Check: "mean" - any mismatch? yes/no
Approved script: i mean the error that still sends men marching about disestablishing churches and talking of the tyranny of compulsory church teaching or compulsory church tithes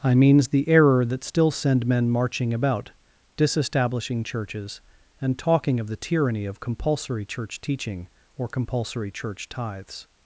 yes